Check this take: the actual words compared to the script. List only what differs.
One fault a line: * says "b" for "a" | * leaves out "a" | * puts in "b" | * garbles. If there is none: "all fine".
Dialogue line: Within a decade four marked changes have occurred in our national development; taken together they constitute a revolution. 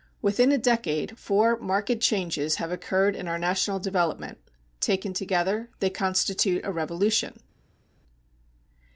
all fine